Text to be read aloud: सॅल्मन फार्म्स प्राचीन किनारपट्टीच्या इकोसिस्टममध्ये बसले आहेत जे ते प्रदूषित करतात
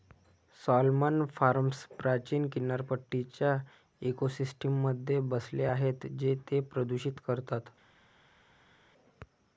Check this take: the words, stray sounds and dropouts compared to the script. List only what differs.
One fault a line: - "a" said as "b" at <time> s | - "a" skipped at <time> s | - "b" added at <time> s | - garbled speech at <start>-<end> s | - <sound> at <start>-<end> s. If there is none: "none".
none